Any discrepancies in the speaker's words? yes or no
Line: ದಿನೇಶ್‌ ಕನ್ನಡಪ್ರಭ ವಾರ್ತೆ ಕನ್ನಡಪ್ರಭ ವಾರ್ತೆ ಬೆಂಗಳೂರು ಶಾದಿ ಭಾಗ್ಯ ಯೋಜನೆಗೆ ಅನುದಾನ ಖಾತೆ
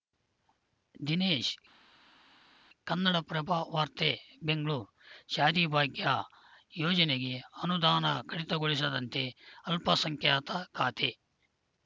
yes